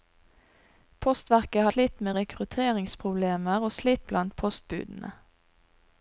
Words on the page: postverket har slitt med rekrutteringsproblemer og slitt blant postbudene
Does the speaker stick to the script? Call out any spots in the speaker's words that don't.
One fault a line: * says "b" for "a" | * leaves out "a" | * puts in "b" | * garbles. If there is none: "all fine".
all fine